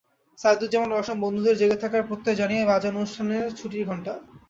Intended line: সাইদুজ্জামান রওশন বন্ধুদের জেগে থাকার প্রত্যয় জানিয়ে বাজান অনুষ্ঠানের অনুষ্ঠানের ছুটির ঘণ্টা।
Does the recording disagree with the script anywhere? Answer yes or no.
yes